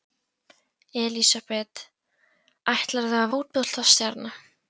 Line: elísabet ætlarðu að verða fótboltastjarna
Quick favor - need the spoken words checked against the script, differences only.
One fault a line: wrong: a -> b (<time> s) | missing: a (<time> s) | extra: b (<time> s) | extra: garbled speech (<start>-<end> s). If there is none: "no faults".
missing: verða (3.3 s)